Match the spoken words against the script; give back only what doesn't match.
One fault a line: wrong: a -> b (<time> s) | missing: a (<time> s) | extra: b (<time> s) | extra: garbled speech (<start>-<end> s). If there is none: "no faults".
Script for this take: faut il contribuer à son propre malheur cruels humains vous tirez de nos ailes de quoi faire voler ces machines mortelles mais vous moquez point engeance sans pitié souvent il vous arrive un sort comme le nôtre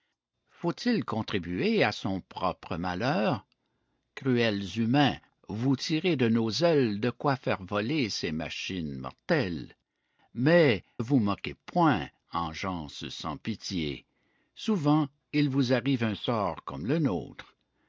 no faults